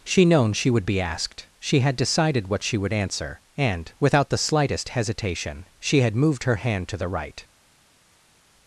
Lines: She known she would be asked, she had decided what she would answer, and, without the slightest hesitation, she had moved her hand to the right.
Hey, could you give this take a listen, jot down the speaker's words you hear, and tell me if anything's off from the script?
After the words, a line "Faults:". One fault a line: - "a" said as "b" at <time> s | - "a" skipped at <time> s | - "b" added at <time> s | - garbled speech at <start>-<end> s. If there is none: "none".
She known she would be asked, she had decided what she would answer, and, without the slightest hesitation, she had moved her hand to the right.
Faults:
none